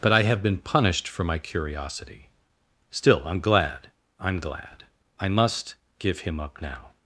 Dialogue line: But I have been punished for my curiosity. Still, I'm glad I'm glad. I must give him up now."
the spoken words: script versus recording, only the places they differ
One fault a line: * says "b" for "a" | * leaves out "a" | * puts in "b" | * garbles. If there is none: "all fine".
all fine